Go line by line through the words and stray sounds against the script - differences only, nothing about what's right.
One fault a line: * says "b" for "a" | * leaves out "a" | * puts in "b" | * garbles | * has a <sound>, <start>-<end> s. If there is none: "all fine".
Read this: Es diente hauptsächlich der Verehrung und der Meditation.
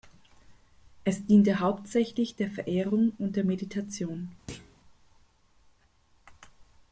* has a thud, 4.5-4.8 s